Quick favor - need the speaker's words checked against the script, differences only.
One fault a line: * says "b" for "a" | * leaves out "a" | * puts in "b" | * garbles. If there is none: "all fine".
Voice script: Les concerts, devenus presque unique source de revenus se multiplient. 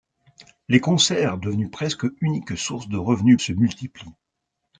all fine